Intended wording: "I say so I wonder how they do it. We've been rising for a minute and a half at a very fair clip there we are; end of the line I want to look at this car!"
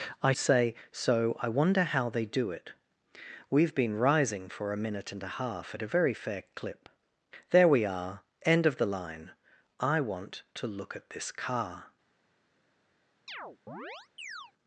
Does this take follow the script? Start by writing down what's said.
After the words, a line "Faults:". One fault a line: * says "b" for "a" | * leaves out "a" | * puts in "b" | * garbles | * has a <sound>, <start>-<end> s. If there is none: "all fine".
"I say so I wonder how they do it. We've been rising for a minute and a half at a very fair clip there we are; end of the line I want to look at this car!"
Faults:
* has a chirp, 13.3-14.5 s